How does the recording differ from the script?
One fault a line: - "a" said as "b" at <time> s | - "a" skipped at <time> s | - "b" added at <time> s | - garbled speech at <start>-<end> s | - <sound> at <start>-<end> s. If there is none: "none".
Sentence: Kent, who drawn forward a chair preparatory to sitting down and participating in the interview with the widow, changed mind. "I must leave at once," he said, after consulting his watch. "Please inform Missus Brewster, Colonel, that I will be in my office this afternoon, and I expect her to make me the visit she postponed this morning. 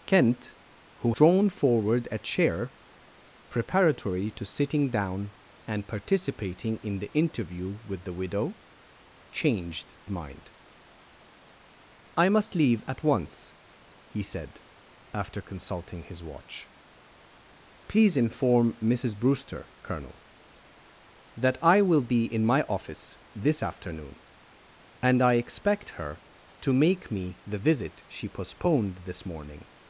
none